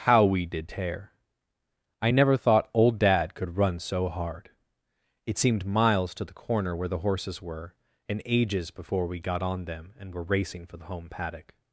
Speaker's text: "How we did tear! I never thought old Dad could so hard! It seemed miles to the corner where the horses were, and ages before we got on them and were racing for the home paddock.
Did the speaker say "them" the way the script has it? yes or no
yes